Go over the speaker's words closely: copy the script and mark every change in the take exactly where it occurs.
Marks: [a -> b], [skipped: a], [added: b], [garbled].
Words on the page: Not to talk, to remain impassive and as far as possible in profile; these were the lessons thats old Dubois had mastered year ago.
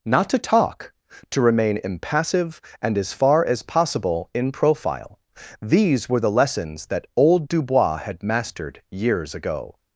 Not to talk, to remain impassive and as far as possible in profile; these were the lessons [thats -> that] old Dubois had mastered [year -> years] ago.